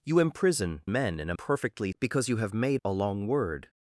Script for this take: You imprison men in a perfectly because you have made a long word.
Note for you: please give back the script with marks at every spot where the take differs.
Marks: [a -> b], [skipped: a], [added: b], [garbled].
You imprison men in a perfectly because you have made a long word.